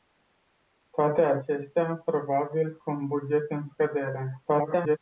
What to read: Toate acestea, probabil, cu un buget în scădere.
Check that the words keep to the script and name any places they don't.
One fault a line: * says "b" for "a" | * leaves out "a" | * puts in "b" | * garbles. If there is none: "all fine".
* garbles